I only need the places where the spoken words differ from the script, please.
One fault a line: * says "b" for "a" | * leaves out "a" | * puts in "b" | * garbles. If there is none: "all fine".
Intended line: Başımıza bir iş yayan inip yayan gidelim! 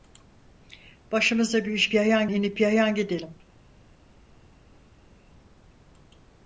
all fine